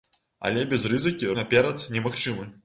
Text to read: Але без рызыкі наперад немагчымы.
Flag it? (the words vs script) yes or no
no